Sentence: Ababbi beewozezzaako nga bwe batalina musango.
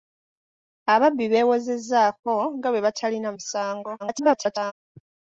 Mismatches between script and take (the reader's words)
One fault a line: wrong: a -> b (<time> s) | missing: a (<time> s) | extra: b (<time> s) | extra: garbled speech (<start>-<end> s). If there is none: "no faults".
extra: garbled speech (4.0-4.7 s)